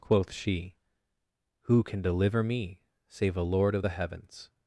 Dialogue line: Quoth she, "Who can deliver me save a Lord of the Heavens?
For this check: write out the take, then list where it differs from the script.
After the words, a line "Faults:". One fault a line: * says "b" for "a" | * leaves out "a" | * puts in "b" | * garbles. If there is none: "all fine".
Quoth she, "Who can deliver me save a Lord of the Heavens?
Faults:
all fine